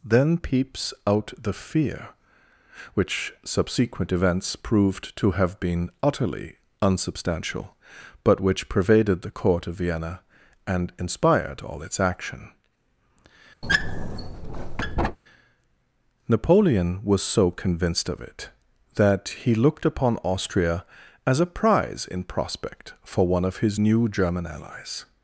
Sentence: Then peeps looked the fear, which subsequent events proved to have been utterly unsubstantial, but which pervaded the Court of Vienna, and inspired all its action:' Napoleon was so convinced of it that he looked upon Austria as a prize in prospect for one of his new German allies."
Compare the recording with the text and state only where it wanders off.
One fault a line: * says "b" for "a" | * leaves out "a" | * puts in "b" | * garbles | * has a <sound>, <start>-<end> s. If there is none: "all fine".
* says "out" for "looked"
* has a squeak, 13.6-15.2 s